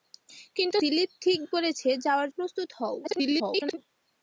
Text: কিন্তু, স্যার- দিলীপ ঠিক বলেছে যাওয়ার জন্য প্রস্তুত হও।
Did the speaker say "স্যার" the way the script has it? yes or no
no